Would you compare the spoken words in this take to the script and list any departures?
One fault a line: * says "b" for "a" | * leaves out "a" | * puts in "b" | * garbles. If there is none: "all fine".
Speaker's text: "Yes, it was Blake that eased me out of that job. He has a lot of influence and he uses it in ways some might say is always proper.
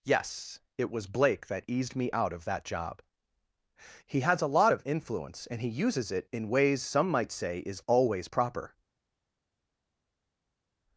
all fine